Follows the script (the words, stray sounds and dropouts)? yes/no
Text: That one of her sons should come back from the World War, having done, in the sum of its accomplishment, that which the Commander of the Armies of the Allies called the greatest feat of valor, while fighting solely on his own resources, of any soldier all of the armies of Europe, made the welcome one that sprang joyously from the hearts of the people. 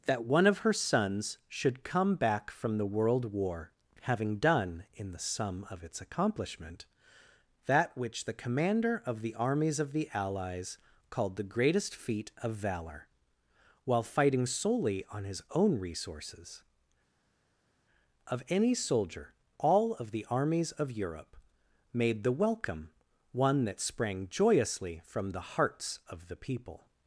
yes